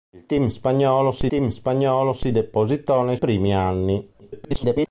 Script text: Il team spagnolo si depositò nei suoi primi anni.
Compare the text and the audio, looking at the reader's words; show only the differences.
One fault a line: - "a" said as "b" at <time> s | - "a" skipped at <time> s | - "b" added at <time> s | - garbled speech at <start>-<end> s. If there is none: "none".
- "team spagnolo si" added at 1.3 s
- "suoi" skipped at 3.2 s
- garbled speech at 4.2-4.9 s